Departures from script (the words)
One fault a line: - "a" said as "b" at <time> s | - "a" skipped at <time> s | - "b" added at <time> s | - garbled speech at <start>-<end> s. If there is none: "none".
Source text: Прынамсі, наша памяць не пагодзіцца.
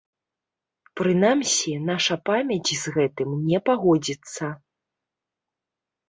- "з гэтым" added at 2.8 s